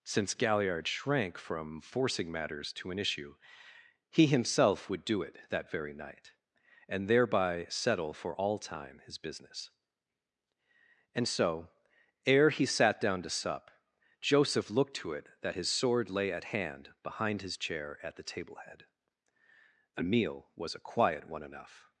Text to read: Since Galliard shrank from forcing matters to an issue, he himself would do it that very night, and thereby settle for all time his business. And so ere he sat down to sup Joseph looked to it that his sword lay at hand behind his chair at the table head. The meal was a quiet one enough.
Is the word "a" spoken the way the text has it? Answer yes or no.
yes